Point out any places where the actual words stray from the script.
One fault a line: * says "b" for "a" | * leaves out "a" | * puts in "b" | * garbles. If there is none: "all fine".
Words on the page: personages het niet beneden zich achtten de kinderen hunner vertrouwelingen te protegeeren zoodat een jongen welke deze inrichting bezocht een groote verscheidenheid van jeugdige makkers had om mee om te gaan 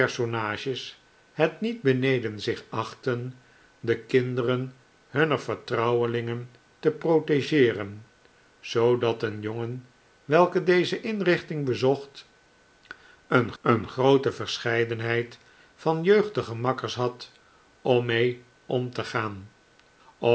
* puts in "een"